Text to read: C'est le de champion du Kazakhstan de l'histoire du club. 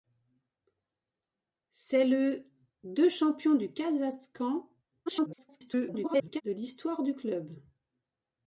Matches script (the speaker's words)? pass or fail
fail